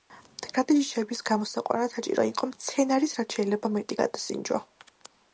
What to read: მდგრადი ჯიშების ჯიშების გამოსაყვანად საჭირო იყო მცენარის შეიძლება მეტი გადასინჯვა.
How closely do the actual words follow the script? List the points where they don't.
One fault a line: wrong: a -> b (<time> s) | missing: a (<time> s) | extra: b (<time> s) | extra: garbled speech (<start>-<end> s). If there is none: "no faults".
missing: ჯიშების (1.2 s)
extra: რაც (3.2 s)